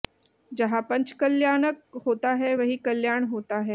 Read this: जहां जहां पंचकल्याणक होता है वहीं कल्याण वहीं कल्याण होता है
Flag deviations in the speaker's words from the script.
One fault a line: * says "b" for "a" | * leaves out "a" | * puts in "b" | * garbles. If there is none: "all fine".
* leaves out "जहां"
* leaves out "वहीं कल्याण"